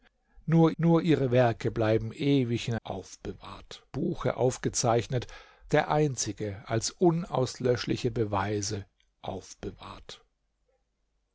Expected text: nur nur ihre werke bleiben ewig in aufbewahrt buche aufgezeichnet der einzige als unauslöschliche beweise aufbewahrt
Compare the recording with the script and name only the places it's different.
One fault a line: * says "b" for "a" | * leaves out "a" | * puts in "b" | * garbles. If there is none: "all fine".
all fine